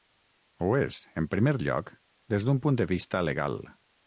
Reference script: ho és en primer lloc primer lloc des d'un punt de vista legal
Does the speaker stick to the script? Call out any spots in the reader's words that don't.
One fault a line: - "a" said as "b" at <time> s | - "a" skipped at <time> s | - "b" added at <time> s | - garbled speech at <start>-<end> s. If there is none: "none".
- "primer lloc" skipped at 1.9 s